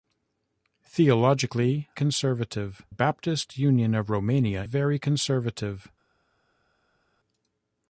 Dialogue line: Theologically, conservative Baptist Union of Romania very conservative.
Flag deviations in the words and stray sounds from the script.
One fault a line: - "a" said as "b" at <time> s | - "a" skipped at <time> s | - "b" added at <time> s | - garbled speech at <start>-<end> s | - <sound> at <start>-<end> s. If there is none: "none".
none